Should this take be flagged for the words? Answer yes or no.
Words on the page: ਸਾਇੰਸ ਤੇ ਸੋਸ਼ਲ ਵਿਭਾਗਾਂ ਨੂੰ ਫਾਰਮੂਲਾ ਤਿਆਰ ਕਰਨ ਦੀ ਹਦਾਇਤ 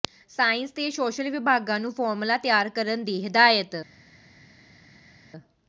no